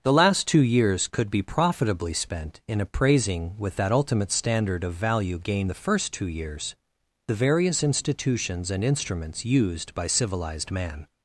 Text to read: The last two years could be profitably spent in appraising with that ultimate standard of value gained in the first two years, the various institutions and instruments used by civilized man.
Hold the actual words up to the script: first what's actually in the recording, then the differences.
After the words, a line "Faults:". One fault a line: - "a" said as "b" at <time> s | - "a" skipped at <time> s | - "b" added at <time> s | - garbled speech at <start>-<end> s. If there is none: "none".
The last two years could be profitably spent in appraising with that ultimate standard of value gained the first two years, the various institutions and instruments used by civilized man.
Faults:
- "in" skipped at 5.7 s